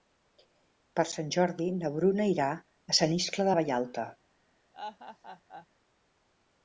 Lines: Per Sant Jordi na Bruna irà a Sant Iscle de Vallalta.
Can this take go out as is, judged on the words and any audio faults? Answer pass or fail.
fail